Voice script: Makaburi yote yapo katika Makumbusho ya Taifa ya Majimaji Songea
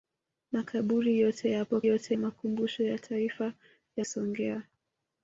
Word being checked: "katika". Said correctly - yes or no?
no